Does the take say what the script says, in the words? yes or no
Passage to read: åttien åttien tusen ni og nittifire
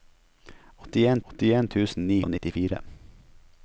yes